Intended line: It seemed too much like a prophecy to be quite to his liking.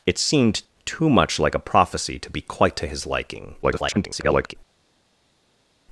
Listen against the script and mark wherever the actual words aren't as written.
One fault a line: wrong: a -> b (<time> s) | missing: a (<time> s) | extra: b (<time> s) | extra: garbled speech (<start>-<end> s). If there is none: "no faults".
extra: garbled speech (3.6-4.6 s)